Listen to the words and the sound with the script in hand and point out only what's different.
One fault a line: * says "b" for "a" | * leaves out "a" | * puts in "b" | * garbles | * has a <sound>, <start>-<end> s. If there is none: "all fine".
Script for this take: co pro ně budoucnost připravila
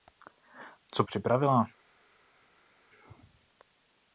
* leaves out "pro ně budoucnost"